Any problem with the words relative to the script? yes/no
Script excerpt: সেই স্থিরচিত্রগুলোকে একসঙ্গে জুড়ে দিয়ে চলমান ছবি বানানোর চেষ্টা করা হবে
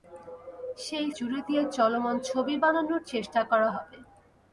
yes